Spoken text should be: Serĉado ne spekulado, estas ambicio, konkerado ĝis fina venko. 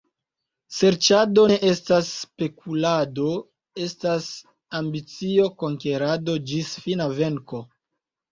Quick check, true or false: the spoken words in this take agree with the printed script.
false